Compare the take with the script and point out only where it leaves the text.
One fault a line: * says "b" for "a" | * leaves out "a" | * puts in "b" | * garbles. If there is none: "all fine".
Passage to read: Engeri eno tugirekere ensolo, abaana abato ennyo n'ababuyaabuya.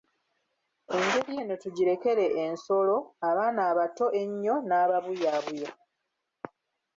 all fine